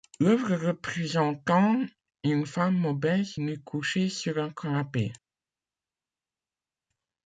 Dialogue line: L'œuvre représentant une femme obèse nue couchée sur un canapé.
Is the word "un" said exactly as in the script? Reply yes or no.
yes